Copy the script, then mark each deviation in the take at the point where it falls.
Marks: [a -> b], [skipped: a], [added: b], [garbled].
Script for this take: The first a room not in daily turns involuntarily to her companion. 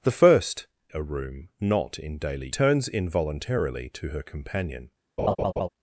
The first a room not in daily turns involuntarily to her companion.